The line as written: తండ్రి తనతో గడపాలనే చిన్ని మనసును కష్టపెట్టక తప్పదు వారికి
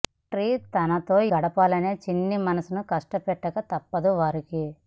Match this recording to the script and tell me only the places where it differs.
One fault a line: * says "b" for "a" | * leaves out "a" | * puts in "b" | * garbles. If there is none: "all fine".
all fine